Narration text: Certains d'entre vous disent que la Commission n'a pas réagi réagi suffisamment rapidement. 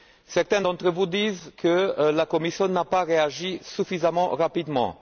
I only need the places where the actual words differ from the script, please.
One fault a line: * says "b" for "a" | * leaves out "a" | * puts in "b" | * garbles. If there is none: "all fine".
* leaves out "réagi"